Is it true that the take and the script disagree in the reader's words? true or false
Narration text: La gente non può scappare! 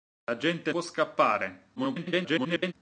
true